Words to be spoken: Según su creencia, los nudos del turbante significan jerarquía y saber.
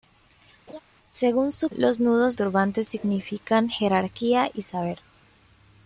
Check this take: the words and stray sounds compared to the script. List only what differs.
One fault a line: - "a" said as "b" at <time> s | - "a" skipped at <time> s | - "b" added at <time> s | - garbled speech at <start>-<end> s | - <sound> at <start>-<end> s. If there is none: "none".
- laugh at 0.7-0.8 s
- "creencia" skipped at 1.7 s
- "del" skipped at 2.4 s